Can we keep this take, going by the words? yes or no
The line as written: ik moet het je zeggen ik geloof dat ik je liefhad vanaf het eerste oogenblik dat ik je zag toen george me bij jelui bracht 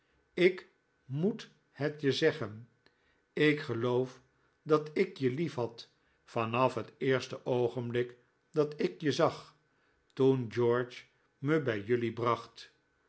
yes